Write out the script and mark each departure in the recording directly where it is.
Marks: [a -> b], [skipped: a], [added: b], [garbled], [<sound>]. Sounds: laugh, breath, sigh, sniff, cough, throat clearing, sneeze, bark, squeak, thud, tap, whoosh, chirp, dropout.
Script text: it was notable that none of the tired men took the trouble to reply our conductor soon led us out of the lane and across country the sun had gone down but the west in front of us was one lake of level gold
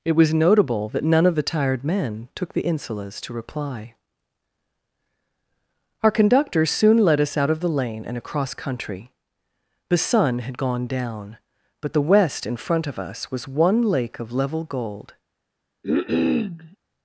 it was notable that none of the tired men took the [trouble -> insulas] to reply our conductor soon led us out of the lane and across country the sun had gone down but the west in front of us was one lake of level gold [cough]